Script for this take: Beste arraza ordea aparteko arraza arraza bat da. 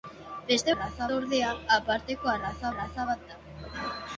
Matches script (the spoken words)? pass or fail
pass